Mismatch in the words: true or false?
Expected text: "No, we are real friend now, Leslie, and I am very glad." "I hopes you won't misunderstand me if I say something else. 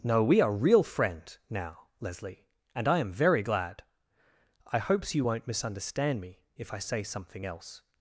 false